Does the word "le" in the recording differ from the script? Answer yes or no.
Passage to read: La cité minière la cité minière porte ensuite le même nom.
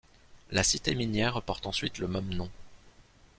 no